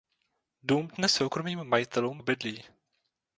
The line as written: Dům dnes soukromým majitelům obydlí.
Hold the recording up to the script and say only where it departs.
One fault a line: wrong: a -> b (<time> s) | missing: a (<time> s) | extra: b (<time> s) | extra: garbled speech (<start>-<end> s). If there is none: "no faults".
no faults